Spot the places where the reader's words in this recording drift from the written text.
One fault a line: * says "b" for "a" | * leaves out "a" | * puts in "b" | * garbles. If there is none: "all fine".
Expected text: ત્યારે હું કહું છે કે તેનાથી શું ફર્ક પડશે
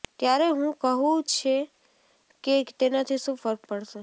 all fine